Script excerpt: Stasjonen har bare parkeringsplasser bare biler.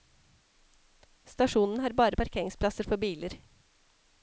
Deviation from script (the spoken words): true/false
true